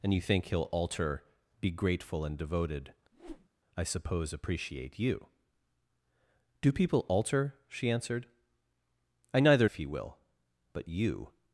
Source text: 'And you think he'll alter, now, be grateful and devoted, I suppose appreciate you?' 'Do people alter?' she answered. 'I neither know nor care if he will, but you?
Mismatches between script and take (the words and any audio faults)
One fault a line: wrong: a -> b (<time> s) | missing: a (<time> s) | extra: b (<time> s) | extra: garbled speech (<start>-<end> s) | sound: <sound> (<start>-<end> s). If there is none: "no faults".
missing: now (1.2 s)
sound: whoosh (3.1-3.5 s)
missing: know nor care (9.7 s)